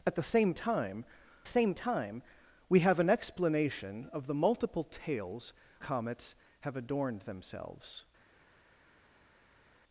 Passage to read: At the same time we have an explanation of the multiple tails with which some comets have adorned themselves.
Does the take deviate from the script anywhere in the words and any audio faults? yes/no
yes